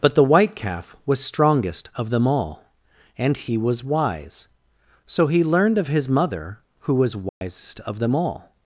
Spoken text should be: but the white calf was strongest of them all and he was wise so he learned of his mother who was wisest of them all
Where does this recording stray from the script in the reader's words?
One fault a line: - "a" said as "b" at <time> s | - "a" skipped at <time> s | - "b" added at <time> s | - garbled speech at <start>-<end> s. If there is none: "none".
none